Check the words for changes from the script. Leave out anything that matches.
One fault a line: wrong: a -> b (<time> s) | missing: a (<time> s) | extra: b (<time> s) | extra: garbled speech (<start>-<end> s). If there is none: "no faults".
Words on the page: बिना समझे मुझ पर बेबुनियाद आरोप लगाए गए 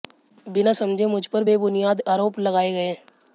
no faults